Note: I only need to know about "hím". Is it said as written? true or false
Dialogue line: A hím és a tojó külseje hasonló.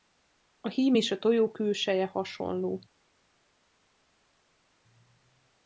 true